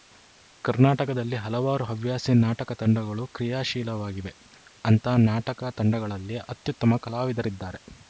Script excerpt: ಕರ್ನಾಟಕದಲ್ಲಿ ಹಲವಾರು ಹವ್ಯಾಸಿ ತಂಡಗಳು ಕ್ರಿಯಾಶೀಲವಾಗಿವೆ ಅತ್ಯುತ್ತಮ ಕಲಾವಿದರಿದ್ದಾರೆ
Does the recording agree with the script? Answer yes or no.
no